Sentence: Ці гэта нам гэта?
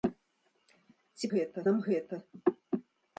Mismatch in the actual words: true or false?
false